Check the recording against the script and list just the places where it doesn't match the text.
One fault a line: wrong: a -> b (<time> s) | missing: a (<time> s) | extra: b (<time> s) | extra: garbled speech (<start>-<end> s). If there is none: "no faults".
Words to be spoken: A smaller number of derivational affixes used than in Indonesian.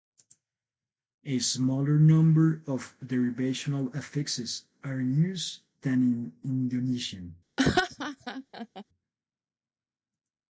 extra: are (4.8 s)